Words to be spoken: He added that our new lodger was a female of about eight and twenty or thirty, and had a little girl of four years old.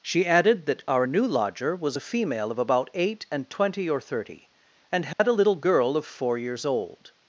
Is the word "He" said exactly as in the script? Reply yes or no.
no